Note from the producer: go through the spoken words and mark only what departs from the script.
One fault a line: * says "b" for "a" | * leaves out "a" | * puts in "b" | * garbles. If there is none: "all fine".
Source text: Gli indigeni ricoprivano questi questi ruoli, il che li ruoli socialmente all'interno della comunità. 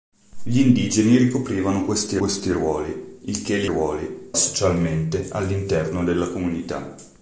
all fine